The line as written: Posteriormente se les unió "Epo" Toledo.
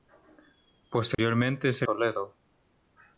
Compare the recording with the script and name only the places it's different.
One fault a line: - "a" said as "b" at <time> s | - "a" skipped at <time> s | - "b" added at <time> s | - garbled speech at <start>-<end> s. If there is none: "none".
- "les unió Epo" skipped at 1.9 s